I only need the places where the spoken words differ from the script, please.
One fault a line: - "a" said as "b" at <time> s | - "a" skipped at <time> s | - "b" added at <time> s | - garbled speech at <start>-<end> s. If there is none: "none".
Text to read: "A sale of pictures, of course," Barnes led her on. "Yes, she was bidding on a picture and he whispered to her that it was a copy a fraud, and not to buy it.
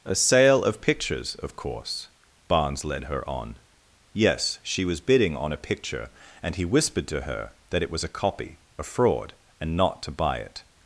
none